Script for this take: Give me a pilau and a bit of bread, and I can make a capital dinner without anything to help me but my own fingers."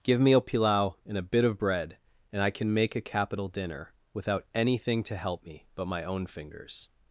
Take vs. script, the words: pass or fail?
pass